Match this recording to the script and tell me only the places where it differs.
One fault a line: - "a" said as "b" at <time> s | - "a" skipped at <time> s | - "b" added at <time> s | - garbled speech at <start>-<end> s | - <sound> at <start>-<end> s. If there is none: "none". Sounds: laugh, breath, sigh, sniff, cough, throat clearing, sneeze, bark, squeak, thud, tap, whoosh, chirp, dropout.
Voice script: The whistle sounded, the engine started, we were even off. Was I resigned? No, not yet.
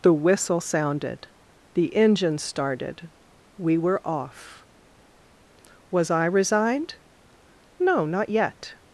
- "even" skipped at 4.0 s